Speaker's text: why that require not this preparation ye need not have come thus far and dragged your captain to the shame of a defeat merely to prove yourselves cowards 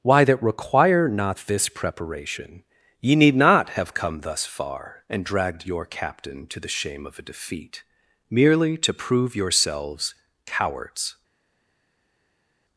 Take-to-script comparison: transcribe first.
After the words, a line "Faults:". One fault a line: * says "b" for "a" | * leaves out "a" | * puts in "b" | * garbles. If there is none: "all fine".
why that require not this preparation ye need not have come thus far and dragged your captain to the shame of a defeat merely to prove yourselves cowards
Faults:
all fine